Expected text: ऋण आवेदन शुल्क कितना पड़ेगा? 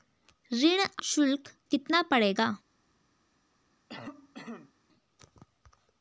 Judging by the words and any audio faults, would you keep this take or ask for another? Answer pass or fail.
fail